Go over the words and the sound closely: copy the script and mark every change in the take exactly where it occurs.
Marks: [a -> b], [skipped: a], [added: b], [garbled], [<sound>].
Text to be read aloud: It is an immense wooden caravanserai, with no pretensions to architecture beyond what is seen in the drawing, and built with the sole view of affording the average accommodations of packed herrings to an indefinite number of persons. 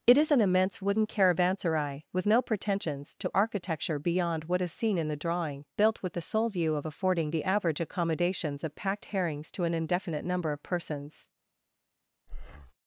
It is an immense wooden caravanserai, with no pretensions to architecture beyond what is seen in the drawing, [skipped: and] built with the sole view of affording the average accommodations of packed herrings to an indefinite number of persons. [breath]